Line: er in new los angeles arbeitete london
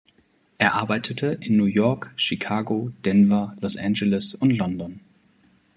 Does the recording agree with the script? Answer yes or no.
no